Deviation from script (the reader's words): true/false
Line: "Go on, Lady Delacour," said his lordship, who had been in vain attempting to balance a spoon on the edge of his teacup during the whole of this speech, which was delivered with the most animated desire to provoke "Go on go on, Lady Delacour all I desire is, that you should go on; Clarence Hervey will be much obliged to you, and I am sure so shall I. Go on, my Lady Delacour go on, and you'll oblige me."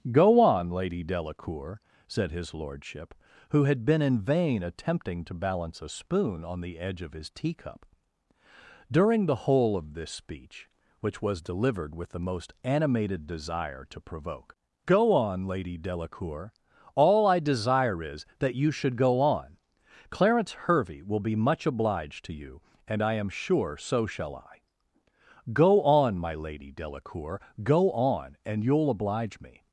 true